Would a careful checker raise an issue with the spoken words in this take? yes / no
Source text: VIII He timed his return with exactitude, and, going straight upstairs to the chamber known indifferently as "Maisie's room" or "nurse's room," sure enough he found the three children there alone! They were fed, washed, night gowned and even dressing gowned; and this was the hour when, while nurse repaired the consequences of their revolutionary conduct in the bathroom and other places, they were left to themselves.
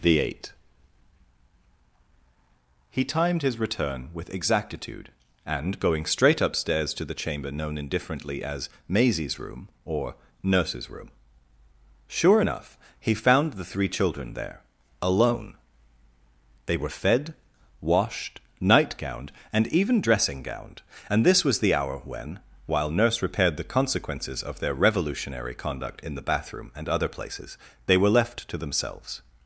yes